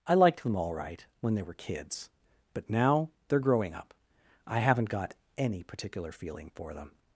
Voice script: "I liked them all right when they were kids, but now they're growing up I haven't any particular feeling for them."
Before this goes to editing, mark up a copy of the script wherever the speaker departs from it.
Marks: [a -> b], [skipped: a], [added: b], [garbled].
"I liked them all right when they were kids, but now they're growing up I haven't [added: got] any particular feeling for them."